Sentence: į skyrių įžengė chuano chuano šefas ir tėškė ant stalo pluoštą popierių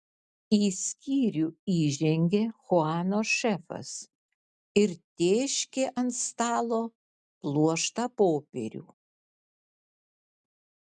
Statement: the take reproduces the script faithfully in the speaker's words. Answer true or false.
false